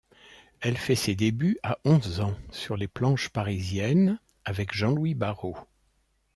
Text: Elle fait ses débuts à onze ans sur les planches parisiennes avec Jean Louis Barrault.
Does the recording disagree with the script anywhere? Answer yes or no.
no